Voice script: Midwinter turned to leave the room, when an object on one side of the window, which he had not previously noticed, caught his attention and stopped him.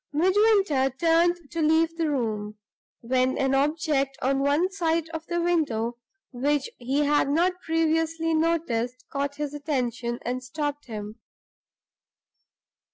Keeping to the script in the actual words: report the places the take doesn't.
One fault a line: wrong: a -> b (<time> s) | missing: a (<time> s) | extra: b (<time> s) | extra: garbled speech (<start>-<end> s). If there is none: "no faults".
no faults